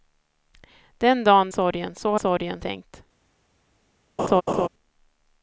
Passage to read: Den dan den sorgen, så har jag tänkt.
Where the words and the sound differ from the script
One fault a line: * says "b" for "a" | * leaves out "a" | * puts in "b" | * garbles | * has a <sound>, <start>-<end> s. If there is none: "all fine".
* leaves out "den"
* says "sorgen" for "jag"
* has a laugh, 4.2-4.7 s